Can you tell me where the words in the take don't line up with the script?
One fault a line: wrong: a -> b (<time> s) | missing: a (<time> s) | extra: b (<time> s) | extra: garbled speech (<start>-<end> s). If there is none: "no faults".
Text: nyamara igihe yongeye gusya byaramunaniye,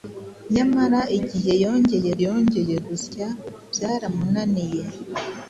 extra: yongeye (2.2 s)